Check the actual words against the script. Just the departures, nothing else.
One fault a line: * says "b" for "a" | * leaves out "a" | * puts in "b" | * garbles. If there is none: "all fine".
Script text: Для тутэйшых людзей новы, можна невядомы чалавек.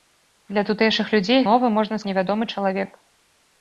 all fine